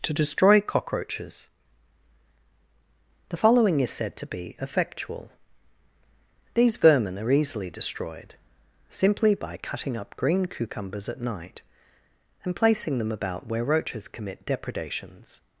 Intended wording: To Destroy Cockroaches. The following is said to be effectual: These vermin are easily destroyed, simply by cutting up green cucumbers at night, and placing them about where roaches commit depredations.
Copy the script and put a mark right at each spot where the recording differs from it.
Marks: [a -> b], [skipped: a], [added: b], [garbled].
To Destroy Cockroaches. The following is said to be effectual: These vermin are easily destroyed, simply by cutting up green cucumbers at night, and placing them about where roaches commit depredations.